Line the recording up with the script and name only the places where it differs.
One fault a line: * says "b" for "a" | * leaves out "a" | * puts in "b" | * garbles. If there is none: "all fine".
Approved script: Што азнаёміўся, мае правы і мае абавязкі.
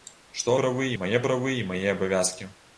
* says "правы" for "азнаёміўся"